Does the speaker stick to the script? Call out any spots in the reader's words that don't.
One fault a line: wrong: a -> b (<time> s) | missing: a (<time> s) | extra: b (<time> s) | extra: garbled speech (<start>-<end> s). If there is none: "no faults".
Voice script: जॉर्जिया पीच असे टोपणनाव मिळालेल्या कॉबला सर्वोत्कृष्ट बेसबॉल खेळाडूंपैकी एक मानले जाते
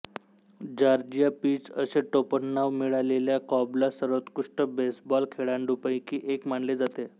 no faults